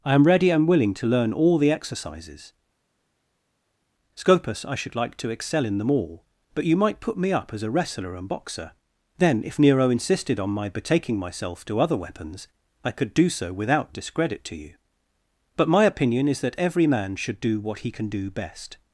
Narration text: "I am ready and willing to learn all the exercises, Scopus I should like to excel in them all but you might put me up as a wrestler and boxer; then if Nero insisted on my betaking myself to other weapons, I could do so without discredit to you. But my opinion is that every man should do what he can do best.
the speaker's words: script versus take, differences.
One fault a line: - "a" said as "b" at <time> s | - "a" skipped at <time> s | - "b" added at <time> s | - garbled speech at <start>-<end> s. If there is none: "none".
none